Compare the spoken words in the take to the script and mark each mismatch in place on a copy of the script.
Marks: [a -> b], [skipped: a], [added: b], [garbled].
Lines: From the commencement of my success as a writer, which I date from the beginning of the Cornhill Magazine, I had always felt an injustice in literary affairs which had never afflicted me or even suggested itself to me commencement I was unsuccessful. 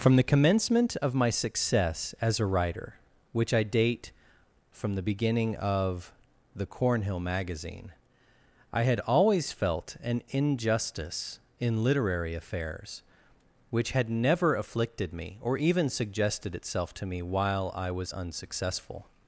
From the commencement of my success as a writer, which I date from the beginning of the Cornhill Magazine, I had always felt an injustice in literary affairs which had never afflicted me or even suggested itself to me [commencement -> while] I was unsuccessful.